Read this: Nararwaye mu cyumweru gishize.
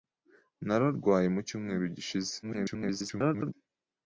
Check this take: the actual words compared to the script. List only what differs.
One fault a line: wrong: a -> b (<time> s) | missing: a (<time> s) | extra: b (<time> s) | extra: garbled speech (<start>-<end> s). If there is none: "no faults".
extra: garbled speech (2.4-3.5 s)